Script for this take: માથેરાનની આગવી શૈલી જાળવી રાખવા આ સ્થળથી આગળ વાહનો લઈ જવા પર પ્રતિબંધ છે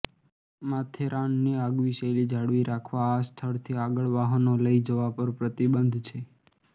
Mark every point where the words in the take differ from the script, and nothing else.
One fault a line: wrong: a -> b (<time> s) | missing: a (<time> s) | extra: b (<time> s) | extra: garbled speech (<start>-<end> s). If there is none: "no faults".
no faults